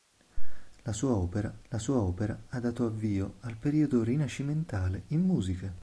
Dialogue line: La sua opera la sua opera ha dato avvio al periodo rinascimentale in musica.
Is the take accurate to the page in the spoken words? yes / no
yes